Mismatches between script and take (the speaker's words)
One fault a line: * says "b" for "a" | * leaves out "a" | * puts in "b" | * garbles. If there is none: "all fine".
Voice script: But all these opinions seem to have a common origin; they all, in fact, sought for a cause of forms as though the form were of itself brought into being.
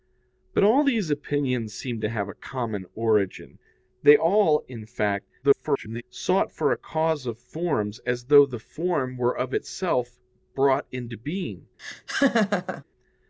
* garbles